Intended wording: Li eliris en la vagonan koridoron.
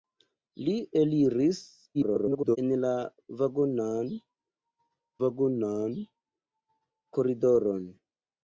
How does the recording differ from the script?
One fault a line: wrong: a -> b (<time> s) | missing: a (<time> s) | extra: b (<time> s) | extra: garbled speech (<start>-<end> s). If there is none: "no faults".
extra: garbled speech (1.9-2.6 s)
extra: vagonan (5.2 s)